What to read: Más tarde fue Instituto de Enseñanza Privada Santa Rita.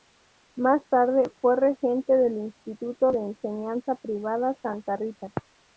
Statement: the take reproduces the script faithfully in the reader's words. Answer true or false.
false